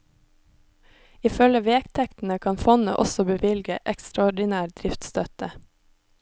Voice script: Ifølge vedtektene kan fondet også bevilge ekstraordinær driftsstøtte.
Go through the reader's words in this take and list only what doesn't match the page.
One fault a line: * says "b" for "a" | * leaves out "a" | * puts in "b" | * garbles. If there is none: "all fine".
all fine